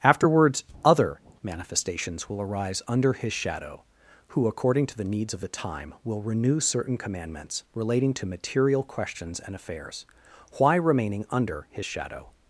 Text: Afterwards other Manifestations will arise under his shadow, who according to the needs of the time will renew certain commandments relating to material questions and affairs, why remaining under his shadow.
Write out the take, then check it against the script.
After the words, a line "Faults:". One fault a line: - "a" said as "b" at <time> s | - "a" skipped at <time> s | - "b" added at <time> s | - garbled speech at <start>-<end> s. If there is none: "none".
Afterwards other Manifestations will arise under his shadow, who according to the needs of the time will renew certain commandments relating to material questions and affairs, why remaining under his shadow.
Faults:
none